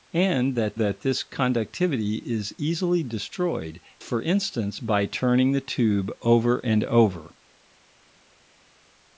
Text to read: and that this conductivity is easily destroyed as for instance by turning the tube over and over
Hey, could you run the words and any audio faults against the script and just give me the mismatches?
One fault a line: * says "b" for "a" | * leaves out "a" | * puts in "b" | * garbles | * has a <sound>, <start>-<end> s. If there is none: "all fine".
* puts in "that"
* leaves out "as"